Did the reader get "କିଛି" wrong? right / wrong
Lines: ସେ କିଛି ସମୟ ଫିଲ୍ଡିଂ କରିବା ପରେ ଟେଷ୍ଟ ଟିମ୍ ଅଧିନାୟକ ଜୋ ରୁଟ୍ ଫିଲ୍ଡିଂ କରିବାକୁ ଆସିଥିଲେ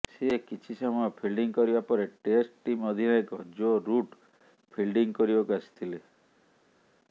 right